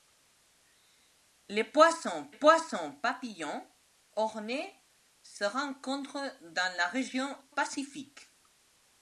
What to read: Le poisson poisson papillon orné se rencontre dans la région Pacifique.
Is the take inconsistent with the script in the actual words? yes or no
no